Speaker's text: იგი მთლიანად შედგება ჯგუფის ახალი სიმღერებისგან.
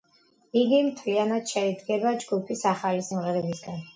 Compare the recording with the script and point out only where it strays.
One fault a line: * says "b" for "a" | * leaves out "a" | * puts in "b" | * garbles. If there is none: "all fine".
all fine